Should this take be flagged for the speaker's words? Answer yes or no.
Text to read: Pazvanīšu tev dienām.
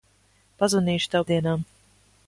no